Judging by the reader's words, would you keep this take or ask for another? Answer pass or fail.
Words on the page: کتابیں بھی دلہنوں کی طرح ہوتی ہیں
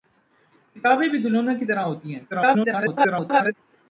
fail